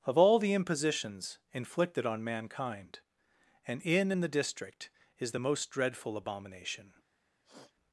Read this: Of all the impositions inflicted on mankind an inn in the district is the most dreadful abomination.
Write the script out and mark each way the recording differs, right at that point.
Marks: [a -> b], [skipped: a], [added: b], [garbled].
Of all the impositions inflicted on mankind an inn in the district is the most dreadful abomination.